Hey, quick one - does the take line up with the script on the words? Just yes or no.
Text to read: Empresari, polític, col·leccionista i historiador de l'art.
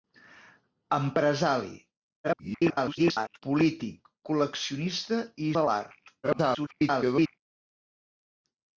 no